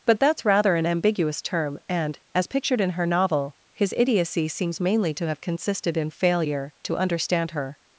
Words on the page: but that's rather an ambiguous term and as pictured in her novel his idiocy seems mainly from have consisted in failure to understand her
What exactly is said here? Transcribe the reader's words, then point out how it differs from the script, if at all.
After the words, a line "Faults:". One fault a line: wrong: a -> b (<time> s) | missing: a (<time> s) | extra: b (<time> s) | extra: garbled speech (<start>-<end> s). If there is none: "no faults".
but that's rather an ambiguous term and as pictured in her novel his idiocy seems mainly to have consisted in failure to understand her
Faults:
wrong: from -> to (5.2 s)